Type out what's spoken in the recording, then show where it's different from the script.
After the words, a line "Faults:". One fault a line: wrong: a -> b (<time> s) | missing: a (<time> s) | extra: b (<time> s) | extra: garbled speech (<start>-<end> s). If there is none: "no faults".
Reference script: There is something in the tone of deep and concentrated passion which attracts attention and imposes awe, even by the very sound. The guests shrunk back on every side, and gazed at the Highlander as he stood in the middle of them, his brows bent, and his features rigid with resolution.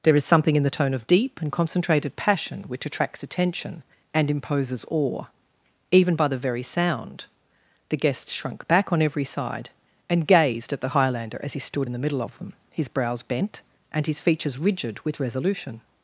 There is something in the tone of deep and concentrated passion which attracts attention and imposes awe, even by the very sound. The guests shrunk back on every side, and gazed at the Highlander as he stood in the middle of them, his brows bent, and his features rigid with resolution.
Faults:
no faults